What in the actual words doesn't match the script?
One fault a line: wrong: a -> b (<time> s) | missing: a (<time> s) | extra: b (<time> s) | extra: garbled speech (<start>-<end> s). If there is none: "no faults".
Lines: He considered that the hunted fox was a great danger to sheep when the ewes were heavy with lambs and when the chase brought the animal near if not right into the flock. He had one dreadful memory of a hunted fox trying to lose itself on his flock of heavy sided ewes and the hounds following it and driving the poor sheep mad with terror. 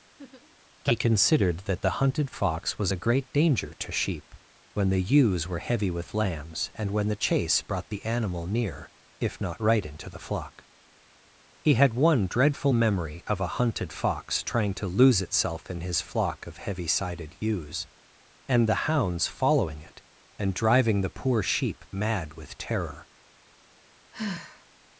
wrong: on -> in (15.7 s)